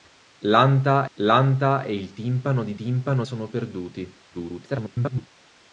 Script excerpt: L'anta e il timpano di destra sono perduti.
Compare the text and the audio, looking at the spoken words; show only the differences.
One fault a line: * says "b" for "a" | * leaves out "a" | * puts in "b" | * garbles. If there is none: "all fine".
* puts in "l'anta"
* says "timpano" for "destra"
* garbles